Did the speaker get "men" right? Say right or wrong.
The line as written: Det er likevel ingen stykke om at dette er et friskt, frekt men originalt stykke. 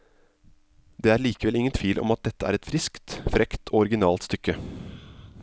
wrong